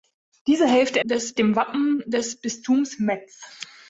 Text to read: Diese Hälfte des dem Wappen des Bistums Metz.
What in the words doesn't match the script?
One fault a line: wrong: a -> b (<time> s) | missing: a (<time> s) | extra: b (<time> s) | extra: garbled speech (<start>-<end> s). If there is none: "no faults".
no faults